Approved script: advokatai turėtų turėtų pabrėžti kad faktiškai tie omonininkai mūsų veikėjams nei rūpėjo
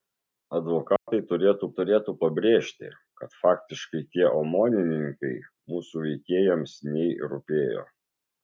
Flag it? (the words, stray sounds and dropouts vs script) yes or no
yes